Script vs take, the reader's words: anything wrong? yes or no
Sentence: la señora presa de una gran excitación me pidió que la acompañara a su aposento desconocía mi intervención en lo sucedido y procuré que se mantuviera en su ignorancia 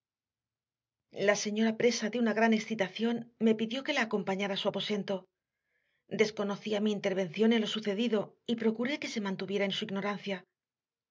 no